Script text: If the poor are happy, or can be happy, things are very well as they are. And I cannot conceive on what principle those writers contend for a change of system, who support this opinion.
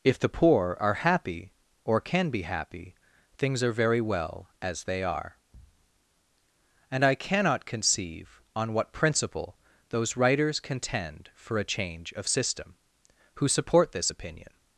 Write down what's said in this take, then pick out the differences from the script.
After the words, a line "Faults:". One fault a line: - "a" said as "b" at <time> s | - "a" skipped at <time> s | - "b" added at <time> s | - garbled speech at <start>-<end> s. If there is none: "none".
If the poor are happy, or can be happy, things are very well as they are. And I cannot conceive on what principle those writers contend for a change of system, who support this opinion.
Faults:
none